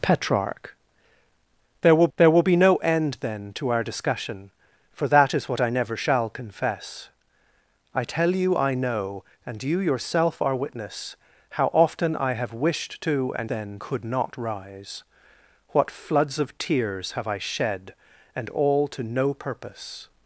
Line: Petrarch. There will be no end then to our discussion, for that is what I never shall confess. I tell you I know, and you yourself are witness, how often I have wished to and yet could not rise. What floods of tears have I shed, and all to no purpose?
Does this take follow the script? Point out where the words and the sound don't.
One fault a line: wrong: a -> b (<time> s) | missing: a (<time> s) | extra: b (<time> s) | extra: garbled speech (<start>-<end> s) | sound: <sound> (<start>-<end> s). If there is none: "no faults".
extra: there will (2.2 s)
wrong: yet -> then (13.5 s)